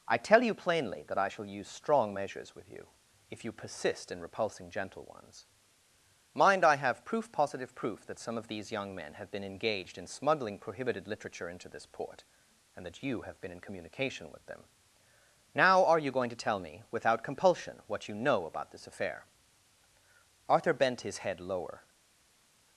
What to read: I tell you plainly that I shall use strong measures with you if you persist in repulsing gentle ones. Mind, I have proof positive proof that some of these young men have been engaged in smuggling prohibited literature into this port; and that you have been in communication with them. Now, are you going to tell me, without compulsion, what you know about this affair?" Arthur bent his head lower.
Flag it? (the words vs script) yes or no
no